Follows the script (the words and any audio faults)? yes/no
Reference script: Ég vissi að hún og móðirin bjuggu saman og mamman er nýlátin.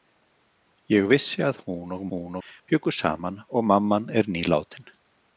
no